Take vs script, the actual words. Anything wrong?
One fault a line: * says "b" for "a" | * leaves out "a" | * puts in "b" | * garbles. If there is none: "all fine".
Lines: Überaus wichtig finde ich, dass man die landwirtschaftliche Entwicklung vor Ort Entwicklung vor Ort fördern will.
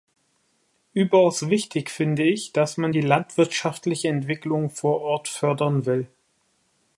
* leaves out "Entwicklung vor Ort"